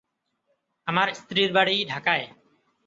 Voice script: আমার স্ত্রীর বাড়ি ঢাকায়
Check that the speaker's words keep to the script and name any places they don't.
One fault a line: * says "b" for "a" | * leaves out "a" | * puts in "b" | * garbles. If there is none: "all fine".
all fine